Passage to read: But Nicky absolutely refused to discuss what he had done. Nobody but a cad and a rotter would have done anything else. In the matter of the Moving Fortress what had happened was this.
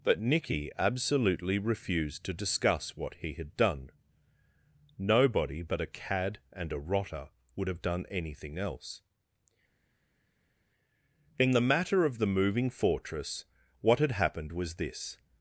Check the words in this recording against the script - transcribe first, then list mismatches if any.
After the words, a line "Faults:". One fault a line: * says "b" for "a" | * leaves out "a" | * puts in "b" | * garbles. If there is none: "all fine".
But Nicky absolutely refused to discuss what he had done. Nobody but a cad and a rotter would have done anything else. In the matter of the Moving Fortress what had happened was this.
Faults:
all fine